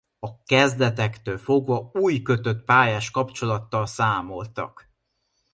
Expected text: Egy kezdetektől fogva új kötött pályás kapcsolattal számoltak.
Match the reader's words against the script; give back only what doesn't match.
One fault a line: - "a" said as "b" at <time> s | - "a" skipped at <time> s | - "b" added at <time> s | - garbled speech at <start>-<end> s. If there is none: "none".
- "Egy" said as "A" at 0.2 s